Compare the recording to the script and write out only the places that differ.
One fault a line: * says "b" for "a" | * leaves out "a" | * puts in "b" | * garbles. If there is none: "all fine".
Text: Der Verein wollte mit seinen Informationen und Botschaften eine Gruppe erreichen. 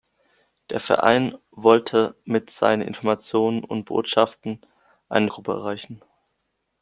all fine